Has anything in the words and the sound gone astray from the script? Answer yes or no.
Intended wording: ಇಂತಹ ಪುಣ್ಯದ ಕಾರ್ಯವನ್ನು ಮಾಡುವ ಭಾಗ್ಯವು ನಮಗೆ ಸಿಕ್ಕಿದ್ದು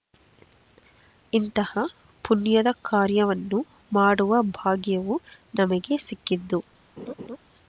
yes